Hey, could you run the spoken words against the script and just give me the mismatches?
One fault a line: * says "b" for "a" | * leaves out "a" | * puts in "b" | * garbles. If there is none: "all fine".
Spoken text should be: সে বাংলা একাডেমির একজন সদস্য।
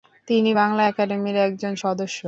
* says "তিনি" for "সে"